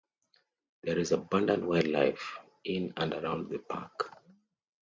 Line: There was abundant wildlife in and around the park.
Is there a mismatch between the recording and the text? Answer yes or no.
yes